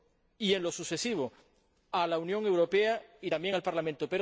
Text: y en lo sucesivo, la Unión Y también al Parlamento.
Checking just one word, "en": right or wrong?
right